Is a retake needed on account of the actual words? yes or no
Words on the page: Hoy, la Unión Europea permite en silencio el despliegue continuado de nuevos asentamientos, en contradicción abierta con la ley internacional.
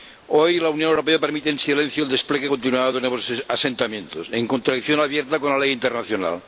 no